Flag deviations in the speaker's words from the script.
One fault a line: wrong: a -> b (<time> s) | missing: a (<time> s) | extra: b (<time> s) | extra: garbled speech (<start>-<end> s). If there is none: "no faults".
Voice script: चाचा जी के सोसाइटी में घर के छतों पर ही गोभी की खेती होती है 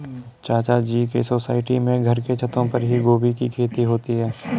no faults